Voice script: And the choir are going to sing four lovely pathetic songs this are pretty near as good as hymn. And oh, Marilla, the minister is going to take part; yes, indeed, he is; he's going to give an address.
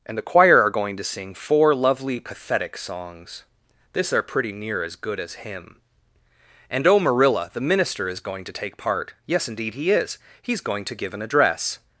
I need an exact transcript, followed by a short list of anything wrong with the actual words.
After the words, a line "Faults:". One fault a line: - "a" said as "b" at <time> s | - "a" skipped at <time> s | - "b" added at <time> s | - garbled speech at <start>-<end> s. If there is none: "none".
And the choir are going to sing four lovely pathetic songs this are pretty near as good as hymn. And oh, Marilla, the minister is going to take part; yes, indeed, he is; he's going to give an address.
Faults:
none